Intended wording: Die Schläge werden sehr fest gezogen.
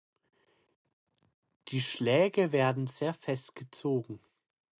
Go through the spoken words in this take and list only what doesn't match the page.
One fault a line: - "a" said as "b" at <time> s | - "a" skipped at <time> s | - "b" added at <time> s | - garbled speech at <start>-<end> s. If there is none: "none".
none